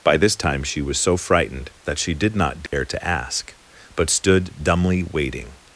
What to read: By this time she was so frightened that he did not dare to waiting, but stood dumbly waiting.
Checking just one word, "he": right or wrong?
wrong